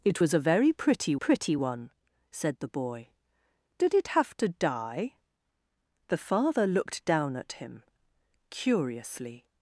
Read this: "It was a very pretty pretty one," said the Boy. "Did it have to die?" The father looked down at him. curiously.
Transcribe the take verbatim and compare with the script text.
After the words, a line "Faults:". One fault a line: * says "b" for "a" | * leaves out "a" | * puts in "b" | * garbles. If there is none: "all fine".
"It was a very pretty pretty one," said the Boy. "Did it have to die?" The father looked down at him. curiously.
Faults:
all fine